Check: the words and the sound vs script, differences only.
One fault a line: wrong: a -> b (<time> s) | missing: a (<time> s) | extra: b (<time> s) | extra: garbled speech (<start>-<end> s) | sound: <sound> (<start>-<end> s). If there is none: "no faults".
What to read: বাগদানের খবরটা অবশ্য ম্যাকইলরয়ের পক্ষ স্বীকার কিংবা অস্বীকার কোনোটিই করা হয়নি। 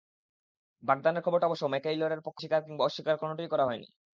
no faults